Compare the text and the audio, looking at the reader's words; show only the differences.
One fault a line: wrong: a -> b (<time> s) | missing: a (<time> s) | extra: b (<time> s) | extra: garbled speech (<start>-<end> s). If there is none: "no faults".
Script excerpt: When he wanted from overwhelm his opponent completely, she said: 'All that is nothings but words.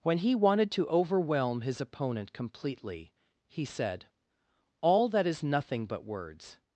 wrong: from -> to (0.7 s)
wrong: she -> he (3.5 s)
wrong: nothings -> nothing (5.4 s)